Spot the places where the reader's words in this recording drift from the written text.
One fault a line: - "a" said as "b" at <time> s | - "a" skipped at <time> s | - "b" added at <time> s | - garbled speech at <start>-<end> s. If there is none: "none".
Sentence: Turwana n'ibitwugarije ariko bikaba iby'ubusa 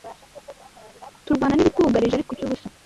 - "bikaba" skipped at 2.3 s